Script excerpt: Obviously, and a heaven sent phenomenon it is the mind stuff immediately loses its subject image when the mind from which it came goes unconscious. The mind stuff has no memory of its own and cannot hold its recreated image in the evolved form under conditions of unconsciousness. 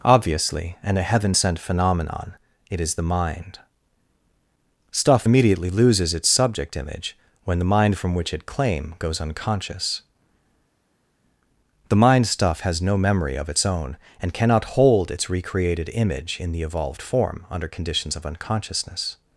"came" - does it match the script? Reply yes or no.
no